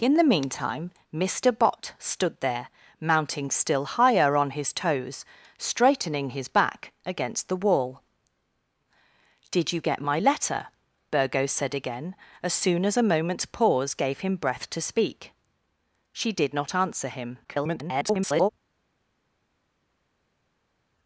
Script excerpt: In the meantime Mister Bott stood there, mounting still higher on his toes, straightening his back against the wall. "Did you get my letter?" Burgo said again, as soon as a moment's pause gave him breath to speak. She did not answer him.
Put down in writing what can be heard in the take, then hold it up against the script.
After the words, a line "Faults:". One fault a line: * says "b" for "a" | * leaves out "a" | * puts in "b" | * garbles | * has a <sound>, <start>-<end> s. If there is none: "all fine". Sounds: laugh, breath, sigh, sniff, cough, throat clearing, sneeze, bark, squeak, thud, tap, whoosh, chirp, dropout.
In the meantime Mister Bott stood there, mounting still higher on his toes, straightening his back against the wall. "Did you get my letter?" Burgo said again, as soon as a moment's pause gave him breath to speak. She did not answer him. [garbled]
Faults:
* garbles